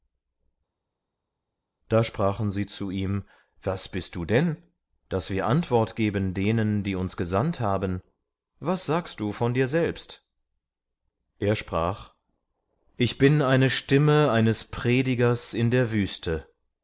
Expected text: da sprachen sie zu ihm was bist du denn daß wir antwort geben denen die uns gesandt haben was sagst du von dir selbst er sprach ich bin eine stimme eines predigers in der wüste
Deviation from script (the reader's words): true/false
false